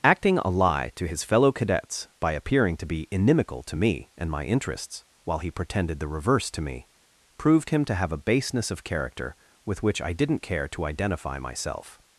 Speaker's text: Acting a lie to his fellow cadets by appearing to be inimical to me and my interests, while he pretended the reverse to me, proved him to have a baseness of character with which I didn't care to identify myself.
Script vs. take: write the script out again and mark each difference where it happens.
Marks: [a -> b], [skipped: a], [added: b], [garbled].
Acting a lie to his fellow cadets by appearing to be inimical to me and my interests, while he pretended the reverse to me, proved him to have a baseness of character with which I didn't care to identify myself.